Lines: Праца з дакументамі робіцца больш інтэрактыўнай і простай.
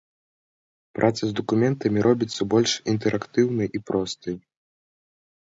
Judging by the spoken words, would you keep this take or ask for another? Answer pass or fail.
pass